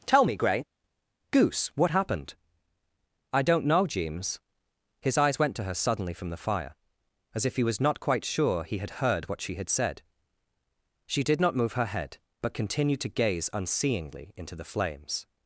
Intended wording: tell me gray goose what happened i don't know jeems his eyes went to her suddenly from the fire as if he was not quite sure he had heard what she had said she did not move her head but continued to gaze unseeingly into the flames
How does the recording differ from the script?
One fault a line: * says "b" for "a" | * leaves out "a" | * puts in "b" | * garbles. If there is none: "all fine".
all fine